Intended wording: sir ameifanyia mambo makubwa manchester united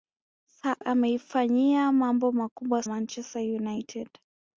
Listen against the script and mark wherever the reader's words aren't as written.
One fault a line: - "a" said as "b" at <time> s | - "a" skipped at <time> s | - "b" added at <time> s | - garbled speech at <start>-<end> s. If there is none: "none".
none